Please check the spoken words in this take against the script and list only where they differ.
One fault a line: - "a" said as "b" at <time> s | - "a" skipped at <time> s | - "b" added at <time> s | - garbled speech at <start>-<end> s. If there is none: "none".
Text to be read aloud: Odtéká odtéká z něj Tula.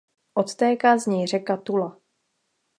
- "odtéká" skipped at 1.0 s
- "řeka" added at 1.3 s